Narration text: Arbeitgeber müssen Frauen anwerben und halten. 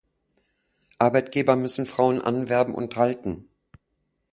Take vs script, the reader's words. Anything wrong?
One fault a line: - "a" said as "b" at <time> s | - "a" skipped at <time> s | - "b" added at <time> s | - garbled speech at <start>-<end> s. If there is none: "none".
none